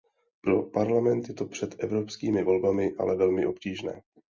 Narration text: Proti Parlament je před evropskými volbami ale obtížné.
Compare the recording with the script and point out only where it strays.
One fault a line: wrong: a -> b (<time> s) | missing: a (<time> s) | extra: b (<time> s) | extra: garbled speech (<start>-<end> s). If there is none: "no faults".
wrong: Proti -> Pro (0.4 s)
extra: to (1.3 s)
extra: velmi (3.2 s)